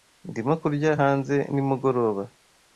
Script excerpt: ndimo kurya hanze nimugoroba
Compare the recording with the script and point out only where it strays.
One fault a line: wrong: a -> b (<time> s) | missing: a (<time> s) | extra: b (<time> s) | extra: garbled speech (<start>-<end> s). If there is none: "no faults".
no faults